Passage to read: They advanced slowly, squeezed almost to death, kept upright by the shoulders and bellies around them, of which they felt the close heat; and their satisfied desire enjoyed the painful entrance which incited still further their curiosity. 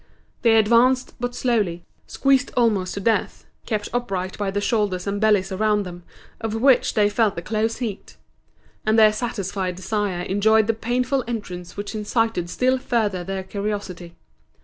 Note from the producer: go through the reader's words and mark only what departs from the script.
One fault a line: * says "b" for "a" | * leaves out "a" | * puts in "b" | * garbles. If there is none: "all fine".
* puts in "but"